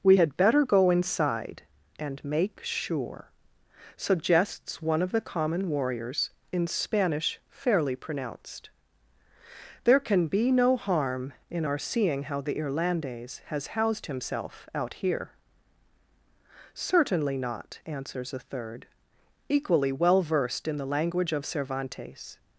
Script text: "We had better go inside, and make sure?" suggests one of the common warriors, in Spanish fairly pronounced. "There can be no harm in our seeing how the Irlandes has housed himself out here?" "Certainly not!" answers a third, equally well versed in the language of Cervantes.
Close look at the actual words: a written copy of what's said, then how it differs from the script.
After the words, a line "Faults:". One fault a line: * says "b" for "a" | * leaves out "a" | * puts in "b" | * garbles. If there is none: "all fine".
"We had better go inside, and make sure?" suggests one of the common warriors, in Spanish fairly pronounced. "There can be no harm in our seeing how the Irlandes has housed himself out here?" "Certainly not!" answers a third, equally well versed in the language of Cervantes.
Faults:
all fine